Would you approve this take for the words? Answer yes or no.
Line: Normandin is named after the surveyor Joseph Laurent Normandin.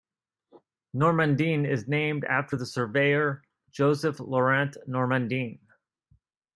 yes